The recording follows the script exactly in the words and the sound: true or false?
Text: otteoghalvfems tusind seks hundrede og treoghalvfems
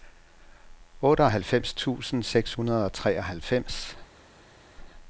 true